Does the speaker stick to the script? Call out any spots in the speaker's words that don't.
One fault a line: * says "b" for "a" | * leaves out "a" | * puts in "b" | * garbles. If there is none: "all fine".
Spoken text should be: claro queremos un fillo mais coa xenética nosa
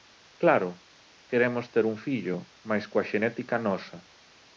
* puts in "ter"